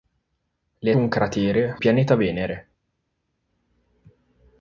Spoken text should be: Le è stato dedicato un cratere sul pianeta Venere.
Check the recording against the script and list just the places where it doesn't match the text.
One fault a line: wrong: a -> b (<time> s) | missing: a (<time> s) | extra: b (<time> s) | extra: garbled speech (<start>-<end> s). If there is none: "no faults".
missing: stato dedicato (0.9 s)
missing: sul (1.8 s)